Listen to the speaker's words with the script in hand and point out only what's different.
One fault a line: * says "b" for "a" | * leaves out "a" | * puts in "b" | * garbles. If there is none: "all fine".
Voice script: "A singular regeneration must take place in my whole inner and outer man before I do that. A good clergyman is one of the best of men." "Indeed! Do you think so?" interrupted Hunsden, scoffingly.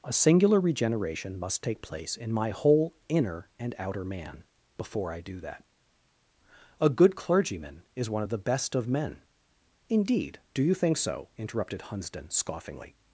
all fine